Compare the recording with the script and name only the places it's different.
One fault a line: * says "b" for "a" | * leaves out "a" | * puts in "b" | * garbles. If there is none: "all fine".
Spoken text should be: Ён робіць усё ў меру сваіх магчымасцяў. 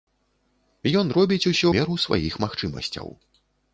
* leaves out "ў"